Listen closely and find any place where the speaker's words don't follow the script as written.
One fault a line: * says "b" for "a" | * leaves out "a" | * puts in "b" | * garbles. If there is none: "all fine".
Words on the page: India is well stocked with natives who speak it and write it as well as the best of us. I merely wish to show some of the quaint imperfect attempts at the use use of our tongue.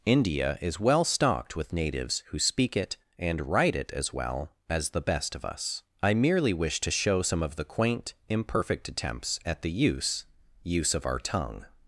all fine